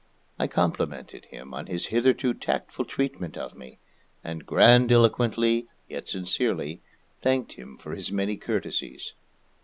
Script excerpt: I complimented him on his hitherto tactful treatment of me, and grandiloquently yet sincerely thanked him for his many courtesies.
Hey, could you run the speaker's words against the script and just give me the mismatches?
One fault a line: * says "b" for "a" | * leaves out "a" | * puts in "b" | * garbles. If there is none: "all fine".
all fine